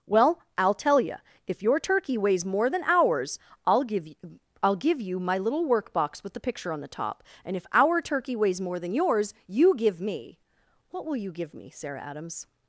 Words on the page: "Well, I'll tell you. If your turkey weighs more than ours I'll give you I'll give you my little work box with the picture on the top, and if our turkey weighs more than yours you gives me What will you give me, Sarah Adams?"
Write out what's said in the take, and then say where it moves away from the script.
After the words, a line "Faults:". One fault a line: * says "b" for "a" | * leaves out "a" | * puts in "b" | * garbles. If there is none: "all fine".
"Well, I'll tell you. If your turkey weighs more than ours I'll give you I'll give you my little work box with the picture on the top, and if our turkey weighs more than yours you give me What will you give me, Sarah Adams?"
Faults:
* says "give" for "gives"